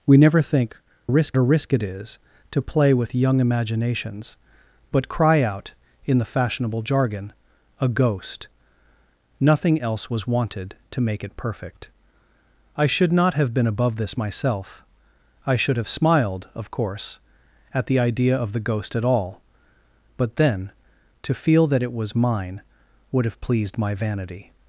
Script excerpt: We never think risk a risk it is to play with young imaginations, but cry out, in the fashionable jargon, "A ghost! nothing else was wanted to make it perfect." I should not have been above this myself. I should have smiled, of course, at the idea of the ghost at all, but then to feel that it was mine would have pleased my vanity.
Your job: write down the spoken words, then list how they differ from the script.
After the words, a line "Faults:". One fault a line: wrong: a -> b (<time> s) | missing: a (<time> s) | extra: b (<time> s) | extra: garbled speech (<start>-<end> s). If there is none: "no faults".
We never think risk a risk it is to play with young imaginations, but cry out, in the fashionable jargon, "A ghost! nothing else was wanted to make it perfect." I should not have been above this myself. I should have smiled, of course, at the idea of the ghost at all, but then to feel that it was mine would have pleased my vanity.
Faults:
no faults